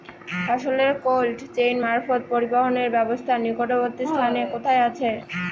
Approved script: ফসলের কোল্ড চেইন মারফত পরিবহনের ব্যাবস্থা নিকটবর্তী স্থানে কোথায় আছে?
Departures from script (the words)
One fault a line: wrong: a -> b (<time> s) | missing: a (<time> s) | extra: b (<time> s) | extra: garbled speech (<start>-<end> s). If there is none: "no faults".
no faults